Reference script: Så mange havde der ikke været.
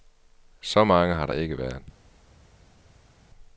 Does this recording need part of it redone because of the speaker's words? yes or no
yes